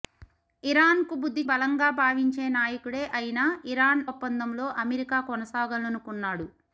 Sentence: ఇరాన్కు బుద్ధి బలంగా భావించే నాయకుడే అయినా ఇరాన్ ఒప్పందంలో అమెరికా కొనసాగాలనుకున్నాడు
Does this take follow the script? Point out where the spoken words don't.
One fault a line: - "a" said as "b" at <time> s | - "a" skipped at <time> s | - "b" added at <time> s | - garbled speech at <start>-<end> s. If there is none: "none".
none